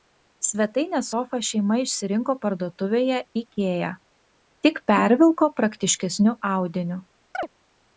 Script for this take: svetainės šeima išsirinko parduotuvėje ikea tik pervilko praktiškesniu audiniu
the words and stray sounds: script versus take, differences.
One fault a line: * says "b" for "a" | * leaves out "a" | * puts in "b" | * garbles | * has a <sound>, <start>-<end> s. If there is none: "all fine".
* puts in "sofą"
* has a chirp, 7.3-7.5 s